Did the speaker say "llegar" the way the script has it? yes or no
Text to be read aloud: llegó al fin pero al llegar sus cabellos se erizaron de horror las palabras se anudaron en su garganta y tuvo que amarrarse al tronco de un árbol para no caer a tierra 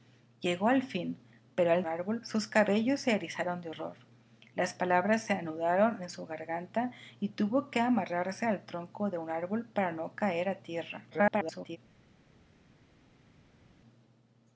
no